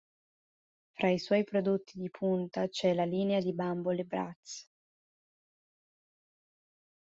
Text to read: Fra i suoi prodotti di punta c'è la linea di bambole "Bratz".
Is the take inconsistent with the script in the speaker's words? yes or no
no